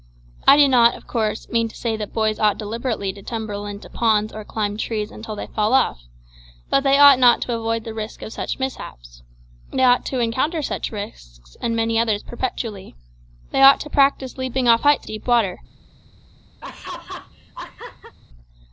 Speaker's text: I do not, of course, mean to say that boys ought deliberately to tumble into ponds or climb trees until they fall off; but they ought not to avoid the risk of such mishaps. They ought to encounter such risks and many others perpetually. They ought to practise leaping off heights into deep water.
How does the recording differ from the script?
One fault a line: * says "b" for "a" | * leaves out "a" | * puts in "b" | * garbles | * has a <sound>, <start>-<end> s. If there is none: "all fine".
* leaves out "into"
* has a laugh, 16.6-18.2 s